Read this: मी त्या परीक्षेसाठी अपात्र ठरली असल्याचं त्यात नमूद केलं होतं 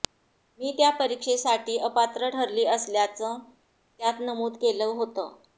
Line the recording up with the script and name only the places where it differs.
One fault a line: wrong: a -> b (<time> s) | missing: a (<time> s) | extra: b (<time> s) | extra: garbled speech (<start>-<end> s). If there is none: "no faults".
no faults